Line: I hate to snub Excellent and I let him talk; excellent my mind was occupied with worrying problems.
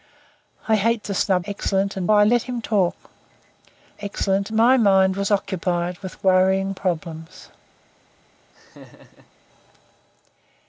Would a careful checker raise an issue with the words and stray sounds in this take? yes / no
yes